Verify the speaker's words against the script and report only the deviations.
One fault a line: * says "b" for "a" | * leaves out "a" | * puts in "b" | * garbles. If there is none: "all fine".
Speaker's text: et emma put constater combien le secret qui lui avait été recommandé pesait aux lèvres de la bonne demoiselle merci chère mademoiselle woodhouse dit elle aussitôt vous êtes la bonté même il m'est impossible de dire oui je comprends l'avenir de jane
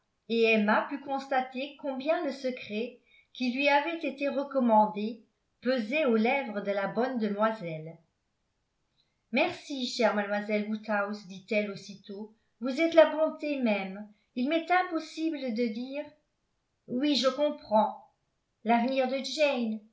all fine